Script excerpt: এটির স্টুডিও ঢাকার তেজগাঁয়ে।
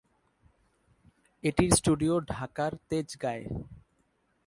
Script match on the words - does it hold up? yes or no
yes